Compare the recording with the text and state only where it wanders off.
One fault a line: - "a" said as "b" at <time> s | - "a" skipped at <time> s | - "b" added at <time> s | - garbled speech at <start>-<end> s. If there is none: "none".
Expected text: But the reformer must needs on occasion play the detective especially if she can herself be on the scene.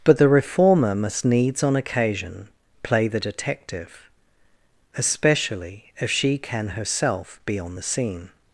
none